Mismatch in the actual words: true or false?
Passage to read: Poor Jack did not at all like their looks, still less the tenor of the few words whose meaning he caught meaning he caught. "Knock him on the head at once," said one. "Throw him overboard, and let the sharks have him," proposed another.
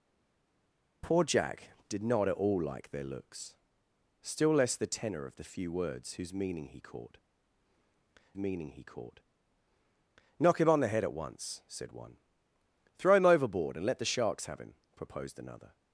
false